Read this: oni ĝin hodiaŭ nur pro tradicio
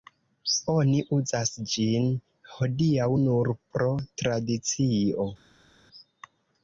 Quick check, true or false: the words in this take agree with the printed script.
false